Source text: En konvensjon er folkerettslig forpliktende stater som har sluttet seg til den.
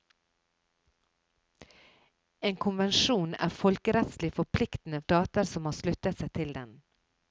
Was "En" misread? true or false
false